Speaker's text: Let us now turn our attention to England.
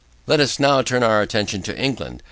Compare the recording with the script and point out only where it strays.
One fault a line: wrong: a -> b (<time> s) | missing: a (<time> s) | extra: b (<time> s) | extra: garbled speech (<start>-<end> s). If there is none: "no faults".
no faults